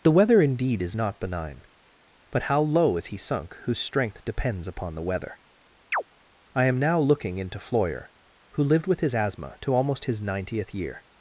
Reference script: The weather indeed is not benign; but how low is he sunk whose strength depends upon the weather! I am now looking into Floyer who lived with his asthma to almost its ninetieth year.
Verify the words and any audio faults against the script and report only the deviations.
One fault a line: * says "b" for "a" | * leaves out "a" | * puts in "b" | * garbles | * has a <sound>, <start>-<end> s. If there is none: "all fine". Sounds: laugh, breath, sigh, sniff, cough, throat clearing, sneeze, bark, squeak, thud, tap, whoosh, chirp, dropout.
* has a chirp, 5.9-6.0 s
* says "his" for "its"